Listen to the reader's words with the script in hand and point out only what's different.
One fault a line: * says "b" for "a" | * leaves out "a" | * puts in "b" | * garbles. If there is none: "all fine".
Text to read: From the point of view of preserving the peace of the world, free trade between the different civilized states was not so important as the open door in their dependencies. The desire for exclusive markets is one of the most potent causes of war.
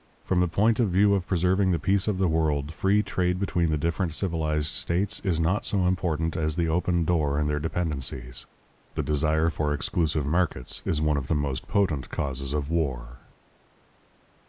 * says "is" for "was"